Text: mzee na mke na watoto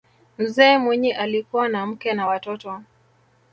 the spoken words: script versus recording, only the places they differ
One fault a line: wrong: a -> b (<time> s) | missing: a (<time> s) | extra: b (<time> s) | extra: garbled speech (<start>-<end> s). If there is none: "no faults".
extra: mwinyi alikuwa (0.8 s)